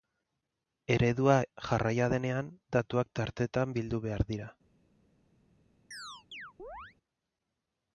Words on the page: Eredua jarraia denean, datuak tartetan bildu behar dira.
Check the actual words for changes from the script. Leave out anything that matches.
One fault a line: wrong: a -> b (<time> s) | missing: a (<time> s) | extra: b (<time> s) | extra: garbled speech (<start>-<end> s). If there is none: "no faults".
no faults